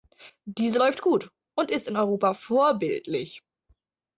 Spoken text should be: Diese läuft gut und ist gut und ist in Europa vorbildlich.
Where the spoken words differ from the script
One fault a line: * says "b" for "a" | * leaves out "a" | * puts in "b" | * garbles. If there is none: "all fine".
* leaves out "gut und ist"